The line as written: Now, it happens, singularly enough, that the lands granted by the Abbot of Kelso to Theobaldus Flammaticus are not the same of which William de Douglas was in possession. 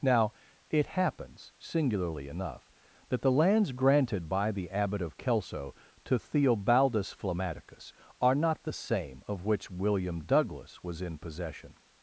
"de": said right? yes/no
no